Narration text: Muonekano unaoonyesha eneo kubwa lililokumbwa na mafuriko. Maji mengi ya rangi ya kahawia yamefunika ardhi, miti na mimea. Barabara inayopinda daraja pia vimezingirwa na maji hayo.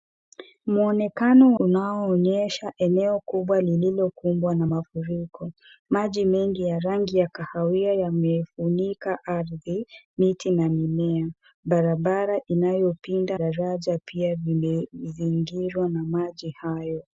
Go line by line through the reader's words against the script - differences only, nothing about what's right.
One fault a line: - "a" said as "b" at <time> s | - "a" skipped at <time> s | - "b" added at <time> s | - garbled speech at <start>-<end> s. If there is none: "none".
none